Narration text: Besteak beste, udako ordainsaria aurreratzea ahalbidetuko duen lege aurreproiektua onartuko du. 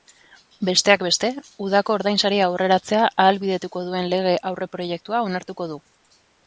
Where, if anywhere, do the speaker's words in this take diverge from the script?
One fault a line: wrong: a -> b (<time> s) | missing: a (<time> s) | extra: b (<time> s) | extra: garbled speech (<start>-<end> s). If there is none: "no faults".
no faults